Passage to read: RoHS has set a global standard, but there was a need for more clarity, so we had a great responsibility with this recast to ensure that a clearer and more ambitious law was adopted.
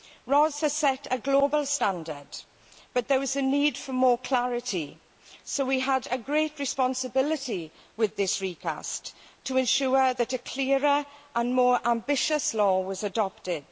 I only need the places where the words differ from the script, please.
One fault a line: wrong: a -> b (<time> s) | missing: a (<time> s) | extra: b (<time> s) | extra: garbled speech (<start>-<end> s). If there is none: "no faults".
no faults